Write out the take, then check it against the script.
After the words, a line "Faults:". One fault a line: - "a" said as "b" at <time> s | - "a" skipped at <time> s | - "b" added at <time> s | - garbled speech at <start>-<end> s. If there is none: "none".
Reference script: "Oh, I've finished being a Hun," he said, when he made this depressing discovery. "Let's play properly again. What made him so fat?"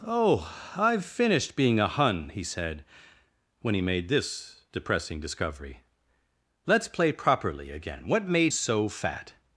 "Oh, I've finished being a Hun," he said, when he made this depressing discovery. "Let's play properly again. What made so fat?"
Faults:
- "him" skipped at 8.5 s